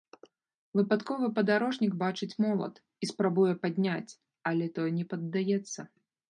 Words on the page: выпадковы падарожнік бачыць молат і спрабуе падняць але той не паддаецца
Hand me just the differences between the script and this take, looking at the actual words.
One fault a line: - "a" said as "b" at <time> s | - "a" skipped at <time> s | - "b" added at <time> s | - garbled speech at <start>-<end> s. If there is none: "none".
none